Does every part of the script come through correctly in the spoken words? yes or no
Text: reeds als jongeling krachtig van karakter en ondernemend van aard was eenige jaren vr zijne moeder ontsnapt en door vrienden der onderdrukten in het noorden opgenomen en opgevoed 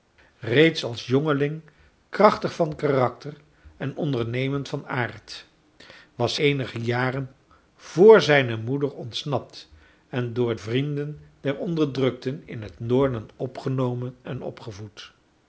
yes